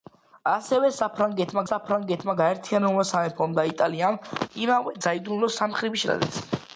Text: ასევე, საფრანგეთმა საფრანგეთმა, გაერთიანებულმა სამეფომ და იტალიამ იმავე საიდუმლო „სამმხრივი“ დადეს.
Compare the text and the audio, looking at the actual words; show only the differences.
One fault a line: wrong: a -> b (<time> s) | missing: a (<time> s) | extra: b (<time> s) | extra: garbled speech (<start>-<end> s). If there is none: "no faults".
no faults